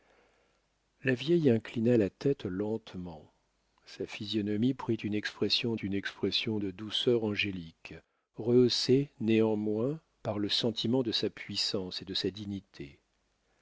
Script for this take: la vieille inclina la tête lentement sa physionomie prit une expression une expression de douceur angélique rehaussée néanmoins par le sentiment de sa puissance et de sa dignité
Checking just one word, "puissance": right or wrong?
right